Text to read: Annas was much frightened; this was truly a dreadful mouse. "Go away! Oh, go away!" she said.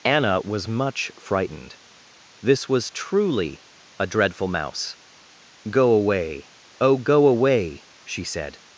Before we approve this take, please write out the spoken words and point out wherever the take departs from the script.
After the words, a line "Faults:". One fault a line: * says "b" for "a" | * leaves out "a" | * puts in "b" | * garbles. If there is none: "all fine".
Anna was much frightened; this was truly a dreadful mouse. "Go away! Oh, go away!" she said.
Faults:
* says "Anna" for "Annas"